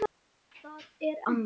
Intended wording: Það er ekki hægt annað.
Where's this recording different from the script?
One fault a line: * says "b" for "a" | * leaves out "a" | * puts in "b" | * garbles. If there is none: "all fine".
* leaves out "ekki hægt"